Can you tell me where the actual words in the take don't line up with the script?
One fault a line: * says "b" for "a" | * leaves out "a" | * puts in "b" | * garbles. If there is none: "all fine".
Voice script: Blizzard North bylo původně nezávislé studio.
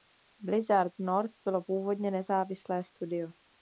all fine